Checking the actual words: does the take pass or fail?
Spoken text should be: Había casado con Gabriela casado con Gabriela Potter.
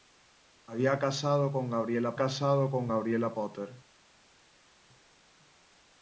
pass